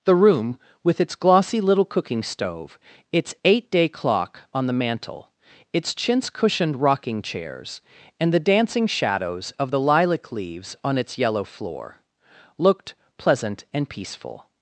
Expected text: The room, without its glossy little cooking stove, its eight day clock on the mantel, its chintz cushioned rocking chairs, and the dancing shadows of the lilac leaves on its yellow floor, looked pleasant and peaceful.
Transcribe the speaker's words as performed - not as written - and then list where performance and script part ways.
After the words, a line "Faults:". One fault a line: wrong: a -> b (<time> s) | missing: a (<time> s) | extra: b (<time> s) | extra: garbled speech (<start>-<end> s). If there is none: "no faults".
The room, with its glossy little cooking stove, its eight day clock on the mantel, its chintz cushioned rocking chairs, and the dancing shadows of the lilac leaves on its yellow floor, looked pleasant and peaceful.
Faults:
wrong: without -> with (0.8 s)